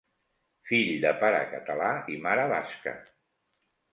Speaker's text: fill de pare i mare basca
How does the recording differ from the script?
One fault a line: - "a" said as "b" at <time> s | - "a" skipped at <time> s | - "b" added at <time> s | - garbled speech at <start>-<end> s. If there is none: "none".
- "català" added at 1.5 s